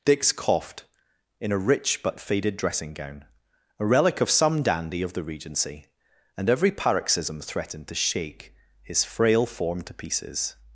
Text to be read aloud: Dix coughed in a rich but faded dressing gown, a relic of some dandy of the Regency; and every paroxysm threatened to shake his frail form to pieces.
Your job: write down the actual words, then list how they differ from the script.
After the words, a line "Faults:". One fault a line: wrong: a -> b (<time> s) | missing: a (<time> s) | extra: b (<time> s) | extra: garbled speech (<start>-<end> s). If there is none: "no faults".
Dix coughed in a rich but faded dressing gown, a relic of some dandy of the Regency; and every paroxysm threatened to shake his frail form to pieces.
Faults:
no faults